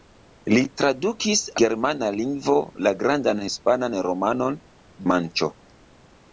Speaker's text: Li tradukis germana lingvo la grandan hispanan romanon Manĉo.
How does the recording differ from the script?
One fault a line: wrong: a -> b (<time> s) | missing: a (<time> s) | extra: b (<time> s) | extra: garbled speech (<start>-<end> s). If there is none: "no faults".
no faults